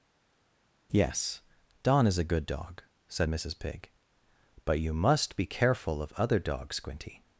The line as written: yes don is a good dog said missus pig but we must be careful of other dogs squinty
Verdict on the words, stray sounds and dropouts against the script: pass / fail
fail